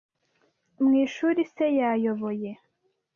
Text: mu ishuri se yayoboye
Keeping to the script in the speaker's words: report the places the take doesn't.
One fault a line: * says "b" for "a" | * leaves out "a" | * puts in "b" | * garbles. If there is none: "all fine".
all fine